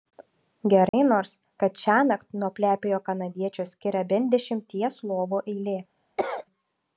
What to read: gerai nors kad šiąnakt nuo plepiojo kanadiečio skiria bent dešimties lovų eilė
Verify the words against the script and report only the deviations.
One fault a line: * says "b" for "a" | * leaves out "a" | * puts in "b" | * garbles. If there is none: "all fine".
all fine